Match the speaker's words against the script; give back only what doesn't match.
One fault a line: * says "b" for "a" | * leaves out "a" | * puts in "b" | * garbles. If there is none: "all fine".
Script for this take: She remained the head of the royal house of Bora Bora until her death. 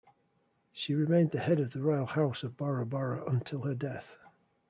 all fine